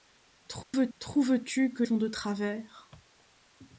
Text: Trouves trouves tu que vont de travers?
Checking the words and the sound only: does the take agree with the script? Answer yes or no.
no